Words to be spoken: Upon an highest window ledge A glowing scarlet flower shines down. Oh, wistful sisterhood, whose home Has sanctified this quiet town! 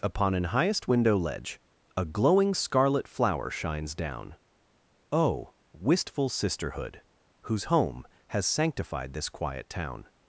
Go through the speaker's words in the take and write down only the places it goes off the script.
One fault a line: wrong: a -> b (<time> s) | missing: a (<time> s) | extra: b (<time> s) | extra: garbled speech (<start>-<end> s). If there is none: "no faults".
no faults